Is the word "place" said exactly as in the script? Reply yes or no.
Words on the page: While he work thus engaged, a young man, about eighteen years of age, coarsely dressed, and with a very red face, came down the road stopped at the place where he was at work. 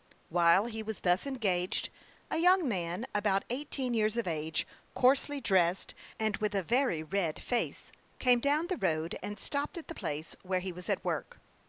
yes